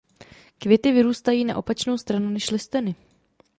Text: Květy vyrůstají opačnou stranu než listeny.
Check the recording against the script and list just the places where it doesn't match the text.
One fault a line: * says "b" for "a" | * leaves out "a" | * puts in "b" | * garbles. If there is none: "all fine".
* puts in "na"